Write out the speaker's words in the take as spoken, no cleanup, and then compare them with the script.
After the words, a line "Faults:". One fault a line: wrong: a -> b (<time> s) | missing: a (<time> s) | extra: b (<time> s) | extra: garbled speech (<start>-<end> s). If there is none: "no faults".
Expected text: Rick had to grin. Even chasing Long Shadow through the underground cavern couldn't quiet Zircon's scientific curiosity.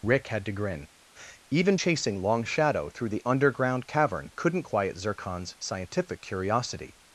Rick had to grin. Even chasing Long Shadow through the underground cavern couldn't quiet Zircon's scientific curiosity.
Faults:
no faults